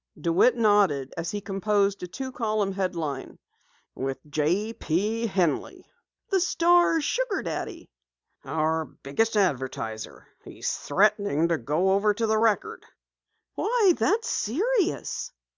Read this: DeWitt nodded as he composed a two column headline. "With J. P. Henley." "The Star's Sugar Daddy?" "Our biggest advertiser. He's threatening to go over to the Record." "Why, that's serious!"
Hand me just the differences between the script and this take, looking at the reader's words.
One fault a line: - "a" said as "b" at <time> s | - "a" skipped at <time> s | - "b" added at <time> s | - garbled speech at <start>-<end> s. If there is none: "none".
none